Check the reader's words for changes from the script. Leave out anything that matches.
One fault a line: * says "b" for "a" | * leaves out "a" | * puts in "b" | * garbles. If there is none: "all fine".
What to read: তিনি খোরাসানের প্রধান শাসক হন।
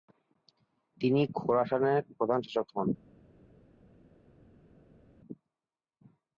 all fine